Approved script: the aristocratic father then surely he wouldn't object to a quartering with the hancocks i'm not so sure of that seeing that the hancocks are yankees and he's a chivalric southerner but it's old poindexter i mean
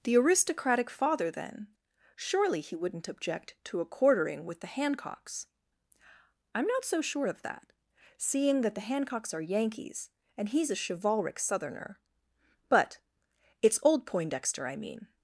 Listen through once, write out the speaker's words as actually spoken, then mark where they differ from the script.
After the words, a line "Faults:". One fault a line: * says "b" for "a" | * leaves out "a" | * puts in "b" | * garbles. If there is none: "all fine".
the aristocratic father then surely he wouldn't object to a quartering with the hancocks i'm not so sure of that seeing that the hancocks are yankees and he's a chivalric southerner but it's old poindexter i mean
Faults:
all fine